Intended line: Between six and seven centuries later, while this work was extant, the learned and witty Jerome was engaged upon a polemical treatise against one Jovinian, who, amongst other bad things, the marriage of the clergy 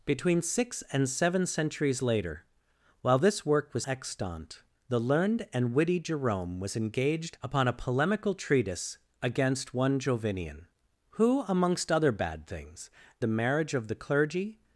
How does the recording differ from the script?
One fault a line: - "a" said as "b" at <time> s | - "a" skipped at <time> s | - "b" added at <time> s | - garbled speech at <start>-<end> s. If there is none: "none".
none